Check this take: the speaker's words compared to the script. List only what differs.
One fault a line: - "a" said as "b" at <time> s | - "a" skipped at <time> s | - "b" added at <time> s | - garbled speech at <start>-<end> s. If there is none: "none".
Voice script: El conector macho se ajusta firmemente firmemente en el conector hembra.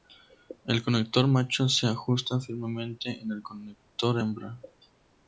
- "firmemente" skipped at 3.2 s